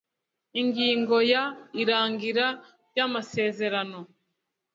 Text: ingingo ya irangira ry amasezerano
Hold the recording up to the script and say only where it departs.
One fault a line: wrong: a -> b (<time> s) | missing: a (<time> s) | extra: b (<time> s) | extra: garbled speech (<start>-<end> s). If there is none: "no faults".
no faults